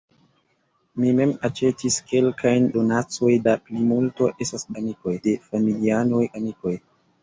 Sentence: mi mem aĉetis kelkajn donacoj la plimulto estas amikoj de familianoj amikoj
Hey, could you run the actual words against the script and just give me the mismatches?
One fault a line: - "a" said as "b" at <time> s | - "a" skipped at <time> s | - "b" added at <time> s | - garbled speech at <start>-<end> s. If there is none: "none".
none